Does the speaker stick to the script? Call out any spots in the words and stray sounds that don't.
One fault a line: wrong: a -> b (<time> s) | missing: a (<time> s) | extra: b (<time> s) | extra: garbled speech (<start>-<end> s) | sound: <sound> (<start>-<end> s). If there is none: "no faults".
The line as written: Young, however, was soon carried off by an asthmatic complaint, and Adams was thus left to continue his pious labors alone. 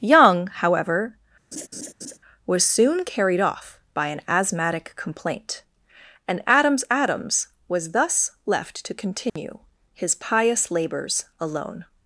sound: laugh (1.5-2.2 s)
extra: Adams (6.9 s)
sound: dropout (9.3-9.4 s)